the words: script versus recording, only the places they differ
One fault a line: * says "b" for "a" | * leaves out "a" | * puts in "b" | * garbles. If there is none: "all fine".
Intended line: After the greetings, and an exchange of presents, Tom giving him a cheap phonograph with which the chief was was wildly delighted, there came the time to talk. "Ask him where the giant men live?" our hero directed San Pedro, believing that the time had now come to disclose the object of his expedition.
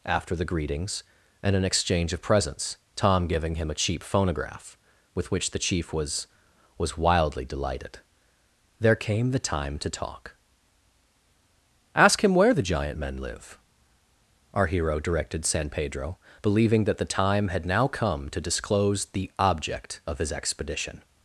all fine